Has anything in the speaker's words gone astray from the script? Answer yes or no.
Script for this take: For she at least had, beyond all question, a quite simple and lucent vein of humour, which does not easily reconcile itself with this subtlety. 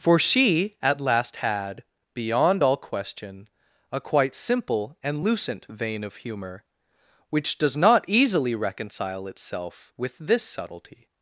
yes